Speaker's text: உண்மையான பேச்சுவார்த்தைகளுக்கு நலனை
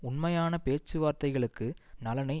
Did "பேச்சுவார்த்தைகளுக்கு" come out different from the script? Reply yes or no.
no